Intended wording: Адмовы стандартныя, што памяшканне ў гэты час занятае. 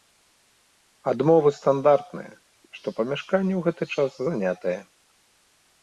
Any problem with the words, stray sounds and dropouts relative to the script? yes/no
no